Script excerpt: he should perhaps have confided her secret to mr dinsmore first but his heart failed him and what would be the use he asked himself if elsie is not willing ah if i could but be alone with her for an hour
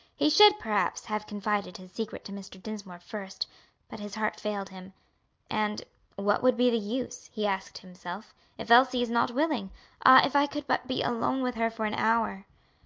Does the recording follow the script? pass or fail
fail